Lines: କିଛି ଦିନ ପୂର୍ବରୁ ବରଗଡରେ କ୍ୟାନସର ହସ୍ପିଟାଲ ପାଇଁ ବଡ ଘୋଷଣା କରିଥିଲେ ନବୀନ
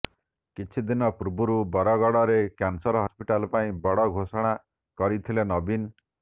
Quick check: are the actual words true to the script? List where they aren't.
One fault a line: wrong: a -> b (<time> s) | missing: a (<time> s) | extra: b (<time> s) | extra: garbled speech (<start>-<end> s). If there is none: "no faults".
no faults